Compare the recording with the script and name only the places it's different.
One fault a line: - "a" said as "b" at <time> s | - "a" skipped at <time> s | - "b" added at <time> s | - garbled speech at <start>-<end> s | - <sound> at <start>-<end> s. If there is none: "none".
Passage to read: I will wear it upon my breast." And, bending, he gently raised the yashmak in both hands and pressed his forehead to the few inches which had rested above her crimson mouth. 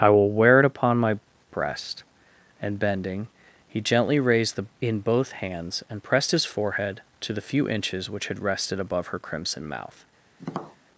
- "yashmak" skipped at 4.6 s
- tap at 10.4-10.8 s